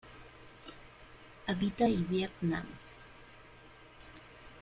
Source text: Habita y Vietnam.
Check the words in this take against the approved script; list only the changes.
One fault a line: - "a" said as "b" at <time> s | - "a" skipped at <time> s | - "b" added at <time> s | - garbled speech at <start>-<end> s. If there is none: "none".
none